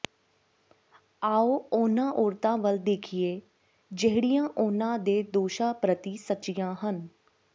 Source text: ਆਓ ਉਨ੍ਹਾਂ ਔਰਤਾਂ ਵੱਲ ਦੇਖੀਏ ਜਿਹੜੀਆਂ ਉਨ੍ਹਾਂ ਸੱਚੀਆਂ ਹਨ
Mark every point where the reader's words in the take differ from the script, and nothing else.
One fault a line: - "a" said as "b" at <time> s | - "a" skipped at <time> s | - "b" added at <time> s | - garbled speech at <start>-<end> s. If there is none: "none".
- "ਦੇ ਦੋਸ਼ਾਂ ਪ੍ਰਤੀ" added at 5.0 s